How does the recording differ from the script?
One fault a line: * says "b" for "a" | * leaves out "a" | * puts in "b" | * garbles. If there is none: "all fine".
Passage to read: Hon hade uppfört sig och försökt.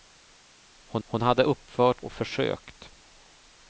* puts in "hon"
* leaves out "sig"